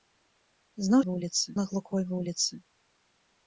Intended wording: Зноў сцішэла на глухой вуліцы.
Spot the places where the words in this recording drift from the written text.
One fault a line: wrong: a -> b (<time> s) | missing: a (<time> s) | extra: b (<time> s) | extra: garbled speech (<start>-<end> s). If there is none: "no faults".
wrong: сцішэла -> вуліцы (1.1 s)